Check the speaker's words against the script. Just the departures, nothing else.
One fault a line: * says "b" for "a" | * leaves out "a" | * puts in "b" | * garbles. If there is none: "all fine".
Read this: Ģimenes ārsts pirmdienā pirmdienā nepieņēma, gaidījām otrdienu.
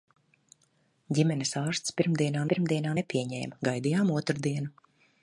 all fine